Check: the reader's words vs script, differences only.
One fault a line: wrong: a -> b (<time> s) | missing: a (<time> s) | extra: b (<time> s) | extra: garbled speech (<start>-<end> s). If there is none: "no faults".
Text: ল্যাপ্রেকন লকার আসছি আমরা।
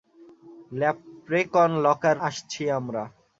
no faults